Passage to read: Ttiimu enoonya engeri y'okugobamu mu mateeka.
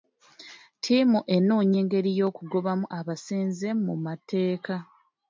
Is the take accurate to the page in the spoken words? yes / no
no